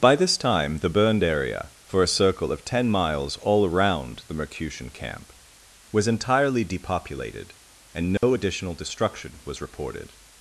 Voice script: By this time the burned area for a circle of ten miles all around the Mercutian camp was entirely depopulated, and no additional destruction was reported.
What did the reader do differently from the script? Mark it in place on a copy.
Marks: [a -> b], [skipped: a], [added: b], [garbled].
By this time the burned area for a circle of ten miles all around the Mercutian camp was entirely depopulated, and no additional destruction was reported.